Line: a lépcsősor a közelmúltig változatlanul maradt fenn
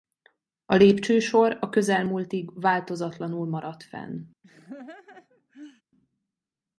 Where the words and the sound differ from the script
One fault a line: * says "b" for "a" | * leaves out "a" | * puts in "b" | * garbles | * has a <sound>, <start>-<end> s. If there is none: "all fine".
* has a laugh, 4.4-5.8 s